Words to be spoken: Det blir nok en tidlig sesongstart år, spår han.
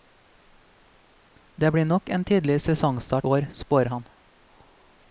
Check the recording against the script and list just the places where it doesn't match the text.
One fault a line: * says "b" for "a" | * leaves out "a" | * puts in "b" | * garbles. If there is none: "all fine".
all fine